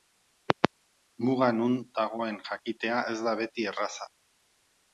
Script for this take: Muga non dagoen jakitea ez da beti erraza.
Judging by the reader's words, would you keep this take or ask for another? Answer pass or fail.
pass